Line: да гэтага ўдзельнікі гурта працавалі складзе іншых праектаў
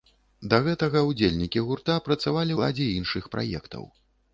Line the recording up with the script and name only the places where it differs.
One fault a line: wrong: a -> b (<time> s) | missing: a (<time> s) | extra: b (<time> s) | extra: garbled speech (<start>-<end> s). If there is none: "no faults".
no faults